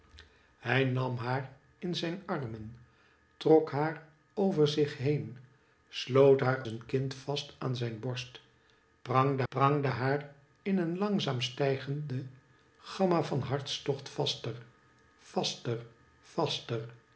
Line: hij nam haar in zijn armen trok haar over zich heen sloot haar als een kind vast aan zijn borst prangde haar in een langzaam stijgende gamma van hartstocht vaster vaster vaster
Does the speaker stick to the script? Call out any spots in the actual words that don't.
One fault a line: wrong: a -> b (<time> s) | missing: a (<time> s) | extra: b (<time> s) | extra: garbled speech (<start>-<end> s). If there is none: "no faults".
missing: als (6.6 s)
extra: prangde (9.5 s)